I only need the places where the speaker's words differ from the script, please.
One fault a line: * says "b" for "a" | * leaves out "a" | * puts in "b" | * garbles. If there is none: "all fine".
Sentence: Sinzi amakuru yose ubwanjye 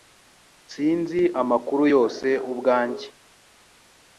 all fine